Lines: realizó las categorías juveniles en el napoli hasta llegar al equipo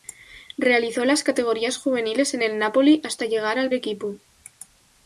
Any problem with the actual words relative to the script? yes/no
no